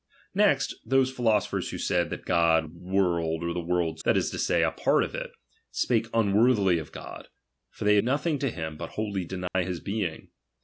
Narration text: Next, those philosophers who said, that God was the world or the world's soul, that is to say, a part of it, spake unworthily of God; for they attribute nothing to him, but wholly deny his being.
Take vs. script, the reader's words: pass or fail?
fail